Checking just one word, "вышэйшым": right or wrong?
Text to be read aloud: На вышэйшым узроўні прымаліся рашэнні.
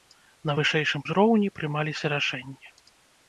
right